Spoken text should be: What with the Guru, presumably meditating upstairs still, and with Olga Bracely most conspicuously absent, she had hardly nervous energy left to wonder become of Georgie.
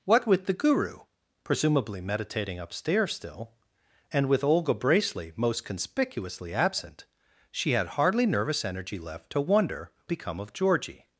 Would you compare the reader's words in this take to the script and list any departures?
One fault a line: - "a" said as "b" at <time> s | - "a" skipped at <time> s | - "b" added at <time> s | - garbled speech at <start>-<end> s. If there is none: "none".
none